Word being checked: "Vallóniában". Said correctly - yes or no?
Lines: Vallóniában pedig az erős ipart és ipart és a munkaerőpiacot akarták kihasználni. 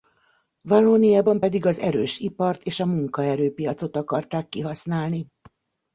yes